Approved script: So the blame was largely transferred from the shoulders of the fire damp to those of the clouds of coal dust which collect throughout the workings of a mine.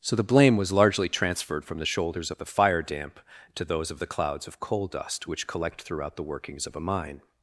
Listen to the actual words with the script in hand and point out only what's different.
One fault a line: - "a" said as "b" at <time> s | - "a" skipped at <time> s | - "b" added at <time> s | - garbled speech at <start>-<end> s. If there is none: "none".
none